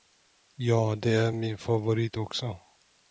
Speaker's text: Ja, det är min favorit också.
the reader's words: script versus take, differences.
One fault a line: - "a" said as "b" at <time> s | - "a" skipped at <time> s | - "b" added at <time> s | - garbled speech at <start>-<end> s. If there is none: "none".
none